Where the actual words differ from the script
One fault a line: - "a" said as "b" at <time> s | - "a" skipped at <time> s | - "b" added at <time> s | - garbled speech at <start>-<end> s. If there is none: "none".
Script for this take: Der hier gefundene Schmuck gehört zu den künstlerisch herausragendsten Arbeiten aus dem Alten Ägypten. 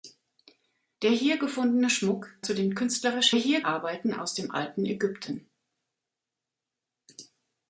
- "gehört" skipped at 2.4 s
- "herausragendsten" said as "hier" at 3.3 s